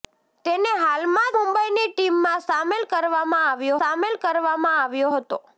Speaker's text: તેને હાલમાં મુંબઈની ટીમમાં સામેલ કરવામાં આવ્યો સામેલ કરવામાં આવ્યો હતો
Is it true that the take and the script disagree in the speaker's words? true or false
false